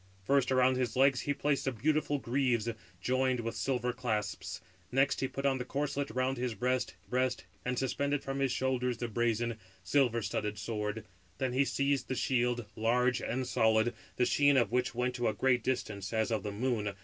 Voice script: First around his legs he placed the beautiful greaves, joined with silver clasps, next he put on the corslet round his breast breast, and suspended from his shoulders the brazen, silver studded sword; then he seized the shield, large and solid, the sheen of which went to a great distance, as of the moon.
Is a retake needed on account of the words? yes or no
no